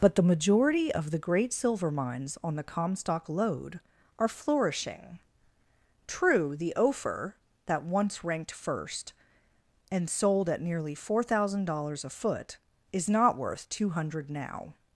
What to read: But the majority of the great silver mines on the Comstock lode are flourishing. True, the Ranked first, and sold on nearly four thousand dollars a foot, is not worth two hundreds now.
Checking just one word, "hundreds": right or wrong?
wrong